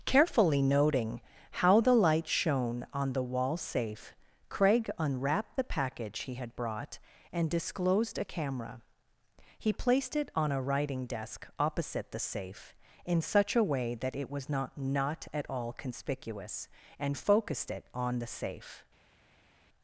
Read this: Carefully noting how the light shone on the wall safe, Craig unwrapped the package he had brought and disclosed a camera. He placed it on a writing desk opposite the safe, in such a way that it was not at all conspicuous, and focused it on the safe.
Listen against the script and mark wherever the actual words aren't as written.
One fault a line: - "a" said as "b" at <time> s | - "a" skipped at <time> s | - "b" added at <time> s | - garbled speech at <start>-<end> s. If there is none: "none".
- "not" added at 14.8 s